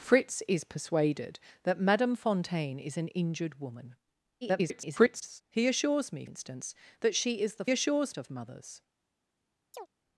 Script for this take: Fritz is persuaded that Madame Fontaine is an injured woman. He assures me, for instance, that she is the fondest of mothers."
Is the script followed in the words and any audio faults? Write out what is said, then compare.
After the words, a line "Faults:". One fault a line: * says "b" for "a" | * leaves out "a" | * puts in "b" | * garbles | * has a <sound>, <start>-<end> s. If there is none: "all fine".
Fritz is persuaded that Madame Fontaine is an injured woman. [garbled] He assures me, instance, that she is the assures of mothers."
Faults:
* garbles
* leaves out "for"
* says "assures" for "fondest"
* has a chirp, 9.7-9.9 s